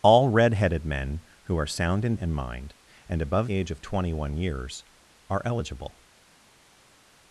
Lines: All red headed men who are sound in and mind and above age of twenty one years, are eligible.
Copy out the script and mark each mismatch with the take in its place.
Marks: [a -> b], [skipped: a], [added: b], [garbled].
All red headed men who are sound in and mind and above age of twenty one years, are eligible.